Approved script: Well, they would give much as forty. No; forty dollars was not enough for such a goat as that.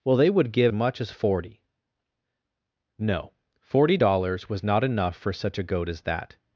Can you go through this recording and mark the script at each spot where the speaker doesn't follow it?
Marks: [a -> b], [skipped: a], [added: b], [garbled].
Well, they would give much as forty. No; forty dollars was not enough for such a goat as that.